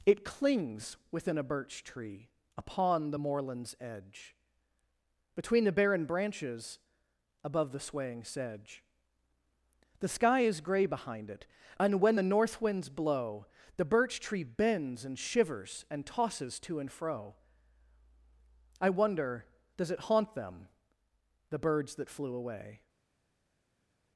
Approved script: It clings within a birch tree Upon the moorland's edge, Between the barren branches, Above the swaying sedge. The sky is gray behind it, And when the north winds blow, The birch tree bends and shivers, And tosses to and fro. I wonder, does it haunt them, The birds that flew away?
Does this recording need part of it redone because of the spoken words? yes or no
no